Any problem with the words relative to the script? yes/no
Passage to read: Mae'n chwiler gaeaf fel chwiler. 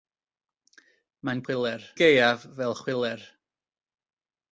no